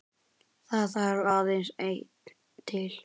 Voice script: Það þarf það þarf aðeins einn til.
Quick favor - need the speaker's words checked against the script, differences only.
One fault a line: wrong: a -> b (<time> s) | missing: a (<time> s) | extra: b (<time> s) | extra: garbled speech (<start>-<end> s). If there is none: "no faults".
missing: það þarf (1.3 s)